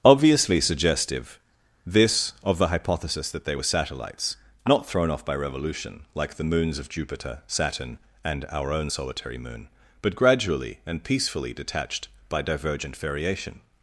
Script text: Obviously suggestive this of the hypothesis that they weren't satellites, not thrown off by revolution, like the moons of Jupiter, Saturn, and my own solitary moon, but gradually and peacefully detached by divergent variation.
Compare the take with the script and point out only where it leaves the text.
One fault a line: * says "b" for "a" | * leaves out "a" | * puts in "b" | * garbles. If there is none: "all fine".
* says "were" for "weren't"
* says "our" for "my"